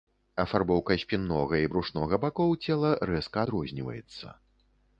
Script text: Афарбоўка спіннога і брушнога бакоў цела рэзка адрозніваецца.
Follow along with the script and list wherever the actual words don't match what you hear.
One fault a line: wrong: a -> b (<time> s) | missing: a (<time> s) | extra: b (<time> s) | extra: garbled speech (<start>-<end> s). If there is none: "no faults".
no faults